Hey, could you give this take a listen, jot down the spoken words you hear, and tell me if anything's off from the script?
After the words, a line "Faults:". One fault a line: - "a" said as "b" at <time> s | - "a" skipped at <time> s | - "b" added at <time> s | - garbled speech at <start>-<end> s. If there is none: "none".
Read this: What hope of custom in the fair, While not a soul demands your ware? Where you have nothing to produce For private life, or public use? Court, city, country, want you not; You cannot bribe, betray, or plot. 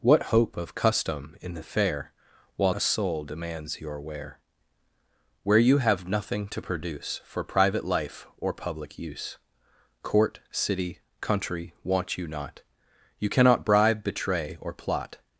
What hope of custom in the fair, While a soul demands your ware? Where you have nothing to produce For private life, or public use? Court, city, country, want you not; You cannot bribe, betray, or plot.
Faults:
- "not" skipped at 2.7 s